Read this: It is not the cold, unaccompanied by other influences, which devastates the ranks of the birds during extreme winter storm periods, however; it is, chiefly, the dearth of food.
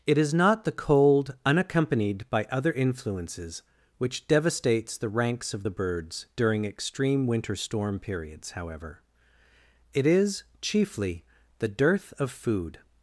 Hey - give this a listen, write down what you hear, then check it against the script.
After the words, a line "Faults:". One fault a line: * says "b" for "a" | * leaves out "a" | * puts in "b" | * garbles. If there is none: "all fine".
It is not the cold, unaccompanied by other influences, which devastates the ranks of the birds during extreme winter storm periods, however; it is, chiefly, the dearth of food.
Faults:
all fine